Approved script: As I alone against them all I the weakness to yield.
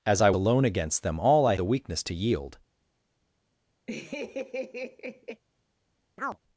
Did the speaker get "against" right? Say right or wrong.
right